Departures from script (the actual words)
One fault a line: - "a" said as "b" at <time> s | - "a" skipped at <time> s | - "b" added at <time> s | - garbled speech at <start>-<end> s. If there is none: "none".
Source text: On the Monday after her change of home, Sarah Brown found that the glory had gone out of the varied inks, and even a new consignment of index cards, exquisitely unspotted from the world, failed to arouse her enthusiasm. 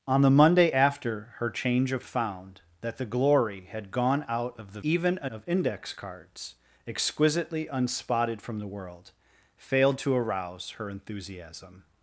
- "home Sarah Brown" skipped at 2.0 s
- "varied inks and" skipped at 4.8 s
- "new consignment" skipped at 5.3 s